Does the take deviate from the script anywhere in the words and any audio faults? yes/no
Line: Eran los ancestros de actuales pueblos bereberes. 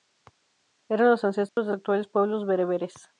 yes